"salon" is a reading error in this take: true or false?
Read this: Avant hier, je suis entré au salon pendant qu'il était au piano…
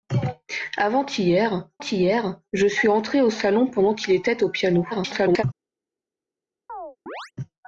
false